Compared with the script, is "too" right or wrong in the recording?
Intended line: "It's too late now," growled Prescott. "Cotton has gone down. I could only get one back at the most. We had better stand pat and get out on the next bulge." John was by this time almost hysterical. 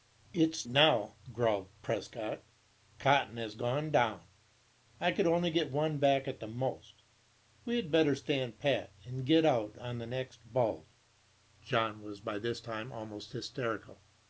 wrong